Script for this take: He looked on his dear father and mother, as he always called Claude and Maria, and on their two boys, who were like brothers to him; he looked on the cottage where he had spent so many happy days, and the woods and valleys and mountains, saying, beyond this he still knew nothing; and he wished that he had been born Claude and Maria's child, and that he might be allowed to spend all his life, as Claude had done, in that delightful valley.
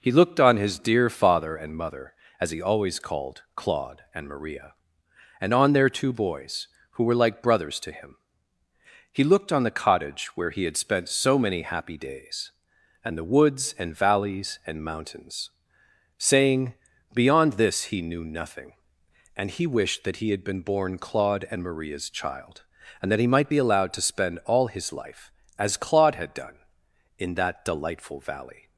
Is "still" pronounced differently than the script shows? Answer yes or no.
yes